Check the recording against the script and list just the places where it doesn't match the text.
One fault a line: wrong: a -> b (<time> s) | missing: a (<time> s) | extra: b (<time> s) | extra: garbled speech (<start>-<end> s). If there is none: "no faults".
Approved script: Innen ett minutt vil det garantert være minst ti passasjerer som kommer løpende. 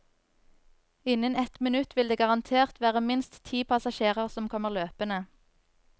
no faults